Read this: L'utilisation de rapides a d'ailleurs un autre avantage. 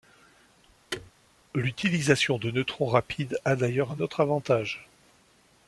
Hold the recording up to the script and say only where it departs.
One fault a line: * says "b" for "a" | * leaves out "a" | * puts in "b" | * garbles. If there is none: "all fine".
* puts in "neutrons"